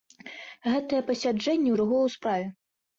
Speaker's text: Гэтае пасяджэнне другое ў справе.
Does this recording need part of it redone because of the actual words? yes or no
no